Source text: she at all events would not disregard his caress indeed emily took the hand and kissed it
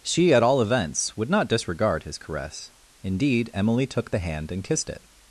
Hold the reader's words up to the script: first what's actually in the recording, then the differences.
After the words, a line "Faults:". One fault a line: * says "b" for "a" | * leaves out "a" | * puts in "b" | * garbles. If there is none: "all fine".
she at all events would not disregard his caress indeed emily took the hand and kissed it
Faults:
all fine